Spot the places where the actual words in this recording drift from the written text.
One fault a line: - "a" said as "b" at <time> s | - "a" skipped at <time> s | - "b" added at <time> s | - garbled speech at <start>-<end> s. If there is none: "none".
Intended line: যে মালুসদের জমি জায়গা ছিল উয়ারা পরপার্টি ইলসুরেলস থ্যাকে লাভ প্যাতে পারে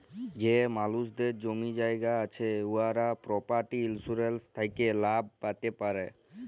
- "ছিল" said as "আছে" at 2.2 s